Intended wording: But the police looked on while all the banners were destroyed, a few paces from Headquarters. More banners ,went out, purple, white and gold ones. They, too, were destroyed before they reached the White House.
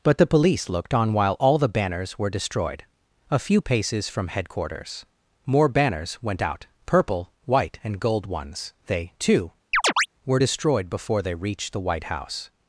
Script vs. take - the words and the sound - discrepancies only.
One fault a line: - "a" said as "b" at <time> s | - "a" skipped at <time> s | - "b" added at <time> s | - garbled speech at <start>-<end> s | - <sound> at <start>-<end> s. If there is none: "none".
- chirp at 9.7-10.1 s